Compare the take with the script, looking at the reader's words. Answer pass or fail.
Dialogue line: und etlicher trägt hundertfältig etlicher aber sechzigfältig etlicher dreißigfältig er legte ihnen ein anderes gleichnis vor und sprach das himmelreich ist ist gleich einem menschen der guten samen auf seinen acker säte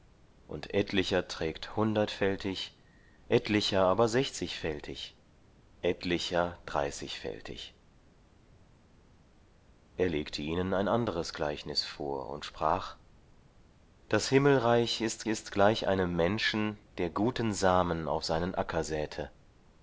pass